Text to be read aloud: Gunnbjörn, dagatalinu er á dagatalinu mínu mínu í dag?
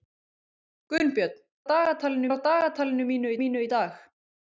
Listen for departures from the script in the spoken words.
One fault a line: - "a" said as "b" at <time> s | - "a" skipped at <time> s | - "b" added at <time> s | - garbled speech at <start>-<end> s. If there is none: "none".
none